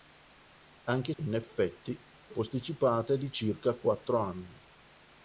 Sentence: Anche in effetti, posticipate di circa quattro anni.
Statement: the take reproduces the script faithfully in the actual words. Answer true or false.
true